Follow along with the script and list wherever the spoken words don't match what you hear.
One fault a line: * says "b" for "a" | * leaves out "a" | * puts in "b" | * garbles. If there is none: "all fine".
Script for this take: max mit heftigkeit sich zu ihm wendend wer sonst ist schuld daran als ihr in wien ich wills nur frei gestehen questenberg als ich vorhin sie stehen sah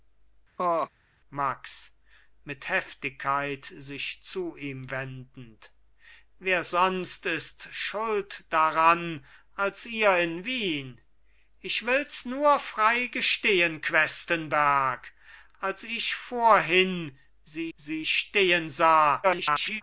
* puts in "sie"
* garbles